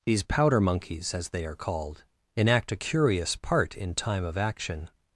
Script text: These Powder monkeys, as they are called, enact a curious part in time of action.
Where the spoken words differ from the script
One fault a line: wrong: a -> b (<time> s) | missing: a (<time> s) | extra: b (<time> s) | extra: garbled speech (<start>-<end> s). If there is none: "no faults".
no faults